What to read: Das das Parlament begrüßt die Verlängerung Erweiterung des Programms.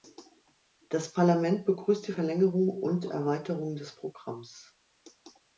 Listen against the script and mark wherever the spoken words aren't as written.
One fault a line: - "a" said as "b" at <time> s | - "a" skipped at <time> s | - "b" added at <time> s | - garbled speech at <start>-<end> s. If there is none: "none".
- "das" skipped at 1.1 s
- "und" added at 2.7 s